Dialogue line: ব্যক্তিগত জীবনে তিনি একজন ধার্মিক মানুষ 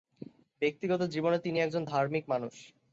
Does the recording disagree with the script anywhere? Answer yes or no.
no